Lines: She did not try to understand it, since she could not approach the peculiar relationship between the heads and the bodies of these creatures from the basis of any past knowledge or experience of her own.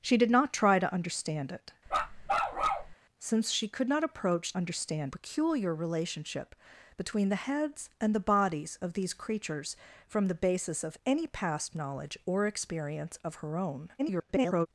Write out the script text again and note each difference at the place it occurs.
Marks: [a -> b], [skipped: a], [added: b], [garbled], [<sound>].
She did not try to understand it, [bark] since she could not approach [the -> understand] peculiar relationship between the heads and the bodies of these creatures from the basis of any past knowledge or experience of her own. [garbled]